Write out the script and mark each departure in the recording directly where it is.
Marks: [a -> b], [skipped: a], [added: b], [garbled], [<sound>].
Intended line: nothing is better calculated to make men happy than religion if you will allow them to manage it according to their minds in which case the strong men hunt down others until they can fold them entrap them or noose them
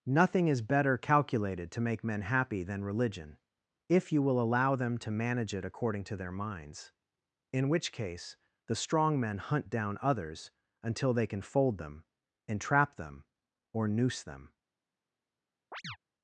nothing is better calculated to make men happy than religion if you will allow them to manage it according to their minds in which case the strong men hunt down others until they can fold them entrap them or noose them [chirp]